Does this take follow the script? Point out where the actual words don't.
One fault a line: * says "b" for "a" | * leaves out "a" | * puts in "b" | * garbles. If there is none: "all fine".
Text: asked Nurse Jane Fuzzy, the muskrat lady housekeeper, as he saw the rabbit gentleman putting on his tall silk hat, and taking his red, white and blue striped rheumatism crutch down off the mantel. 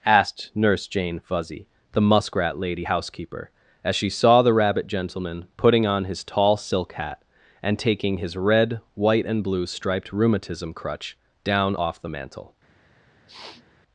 * says "she" for "he"